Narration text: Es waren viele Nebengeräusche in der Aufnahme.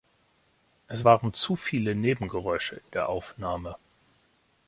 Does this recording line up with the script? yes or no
no